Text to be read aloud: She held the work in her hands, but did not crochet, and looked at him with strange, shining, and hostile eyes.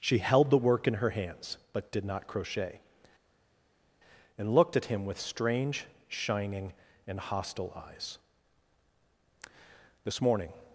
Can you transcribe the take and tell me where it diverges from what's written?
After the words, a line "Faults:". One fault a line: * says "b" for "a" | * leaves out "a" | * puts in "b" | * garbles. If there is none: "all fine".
She held the work in her hands, but did not crochet, and looked at him with strange, shining, and hostile eyes. "This morning
Faults:
* puts in "This morning"